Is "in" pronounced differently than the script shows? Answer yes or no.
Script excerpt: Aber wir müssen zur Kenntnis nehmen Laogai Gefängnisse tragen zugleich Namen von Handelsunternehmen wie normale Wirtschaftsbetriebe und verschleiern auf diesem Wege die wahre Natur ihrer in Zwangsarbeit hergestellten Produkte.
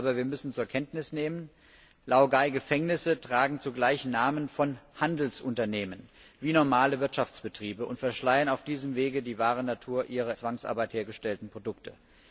yes